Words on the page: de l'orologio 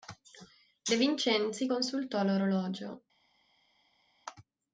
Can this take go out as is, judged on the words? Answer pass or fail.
fail